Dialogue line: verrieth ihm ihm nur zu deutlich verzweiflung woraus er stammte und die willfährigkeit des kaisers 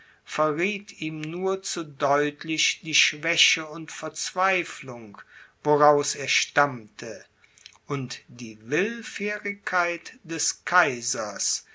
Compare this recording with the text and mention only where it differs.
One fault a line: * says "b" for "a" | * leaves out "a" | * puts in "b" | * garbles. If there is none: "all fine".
* leaves out "ihm"
* puts in "die schwäche und"